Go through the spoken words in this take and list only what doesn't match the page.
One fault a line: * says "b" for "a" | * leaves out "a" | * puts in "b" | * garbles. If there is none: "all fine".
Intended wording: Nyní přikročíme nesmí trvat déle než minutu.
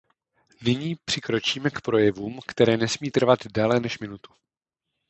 * puts in "k projevům které"